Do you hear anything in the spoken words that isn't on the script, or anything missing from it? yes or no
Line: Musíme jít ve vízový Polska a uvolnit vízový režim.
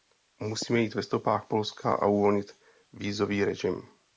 yes